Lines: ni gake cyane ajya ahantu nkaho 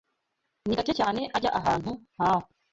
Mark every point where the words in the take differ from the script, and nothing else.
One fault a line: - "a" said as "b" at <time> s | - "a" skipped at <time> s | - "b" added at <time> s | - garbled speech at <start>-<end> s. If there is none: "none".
none